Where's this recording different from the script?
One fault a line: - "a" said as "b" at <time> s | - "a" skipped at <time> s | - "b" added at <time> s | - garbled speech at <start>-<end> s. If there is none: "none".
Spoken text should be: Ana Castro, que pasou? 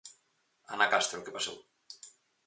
none